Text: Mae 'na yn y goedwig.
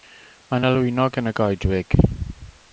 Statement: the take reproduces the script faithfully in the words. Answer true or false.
false